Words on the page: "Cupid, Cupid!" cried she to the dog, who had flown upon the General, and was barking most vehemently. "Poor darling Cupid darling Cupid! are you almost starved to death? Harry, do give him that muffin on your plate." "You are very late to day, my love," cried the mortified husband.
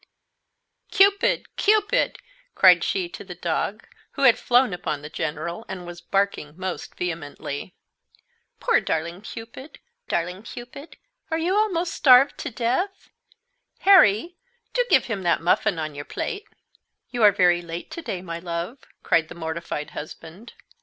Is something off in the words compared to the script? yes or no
no